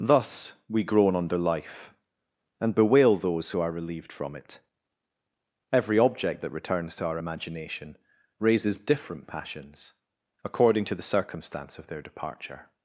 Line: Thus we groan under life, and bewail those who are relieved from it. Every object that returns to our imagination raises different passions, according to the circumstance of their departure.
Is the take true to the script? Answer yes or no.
yes